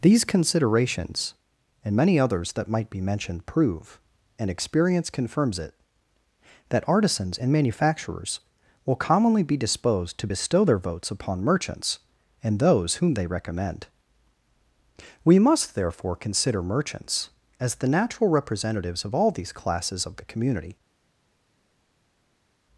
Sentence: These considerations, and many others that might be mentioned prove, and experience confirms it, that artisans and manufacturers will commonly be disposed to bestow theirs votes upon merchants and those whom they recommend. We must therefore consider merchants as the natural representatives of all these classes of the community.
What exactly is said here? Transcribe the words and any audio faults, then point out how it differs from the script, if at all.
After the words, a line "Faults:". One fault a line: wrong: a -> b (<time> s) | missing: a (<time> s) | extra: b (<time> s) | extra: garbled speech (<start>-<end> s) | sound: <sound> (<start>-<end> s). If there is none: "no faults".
These considerations, and many others that might be mentioned prove, and experience confirms it, that artisans and manufacturers will commonly be disposed to bestow their votes upon merchants and those whom they recommend. We must therefore consider merchants as the natural representatives of all these classes of the community.
Faults:
wrong: theirs -> their (10.6 s)